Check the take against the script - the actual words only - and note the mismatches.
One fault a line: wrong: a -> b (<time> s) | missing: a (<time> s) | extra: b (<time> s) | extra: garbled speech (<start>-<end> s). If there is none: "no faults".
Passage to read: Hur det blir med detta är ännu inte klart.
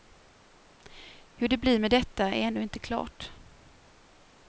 no faults